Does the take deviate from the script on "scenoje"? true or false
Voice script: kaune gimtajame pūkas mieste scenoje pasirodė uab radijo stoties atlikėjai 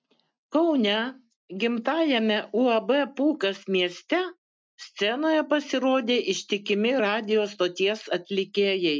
false